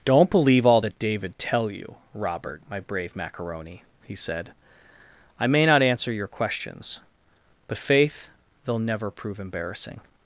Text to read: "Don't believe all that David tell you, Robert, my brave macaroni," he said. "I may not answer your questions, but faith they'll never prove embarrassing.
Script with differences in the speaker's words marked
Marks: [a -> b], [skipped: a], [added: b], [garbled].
"Don't believe all that David tell you, Robert, my brave macaroni," he said. "I may not answer your questions, but faith they'll never prove embarrassing.